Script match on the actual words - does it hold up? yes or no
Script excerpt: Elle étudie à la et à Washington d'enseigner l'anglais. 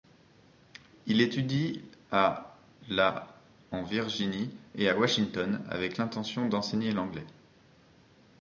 no